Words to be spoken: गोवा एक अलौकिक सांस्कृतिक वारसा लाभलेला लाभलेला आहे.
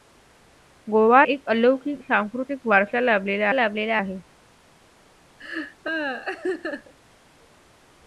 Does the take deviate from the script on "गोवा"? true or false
false